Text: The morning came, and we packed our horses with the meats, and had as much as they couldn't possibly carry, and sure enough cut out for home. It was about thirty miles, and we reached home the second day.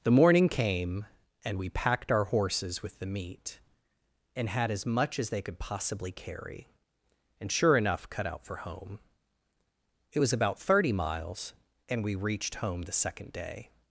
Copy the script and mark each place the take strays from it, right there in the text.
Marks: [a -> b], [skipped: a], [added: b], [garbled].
The morning came, and we packed our horses with the [meats, -> meat] and had as much as they [couldn't -> could] possibly carry, and sure enough cut out for home. It was about thirty miles, and we reached home the second day.